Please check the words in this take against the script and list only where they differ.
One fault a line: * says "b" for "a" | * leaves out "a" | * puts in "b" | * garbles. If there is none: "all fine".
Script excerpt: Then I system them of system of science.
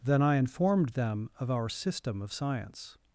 * says "informed" for "system"
* puts in "our"